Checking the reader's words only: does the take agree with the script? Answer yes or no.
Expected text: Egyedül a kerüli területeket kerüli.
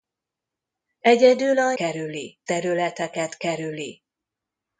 yes